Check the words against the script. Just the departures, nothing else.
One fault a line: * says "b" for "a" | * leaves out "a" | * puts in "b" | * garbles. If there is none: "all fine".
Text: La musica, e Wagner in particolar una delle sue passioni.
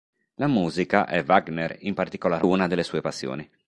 all fine